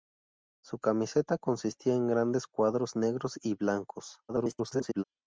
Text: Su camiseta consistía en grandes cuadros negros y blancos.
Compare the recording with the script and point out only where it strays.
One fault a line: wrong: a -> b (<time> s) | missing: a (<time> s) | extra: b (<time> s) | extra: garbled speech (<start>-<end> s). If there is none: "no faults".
extra: garbled speech (4.3-5.0 s)